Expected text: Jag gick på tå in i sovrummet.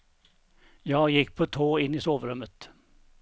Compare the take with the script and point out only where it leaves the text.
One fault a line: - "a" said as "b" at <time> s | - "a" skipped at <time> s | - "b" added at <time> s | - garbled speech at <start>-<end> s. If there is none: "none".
none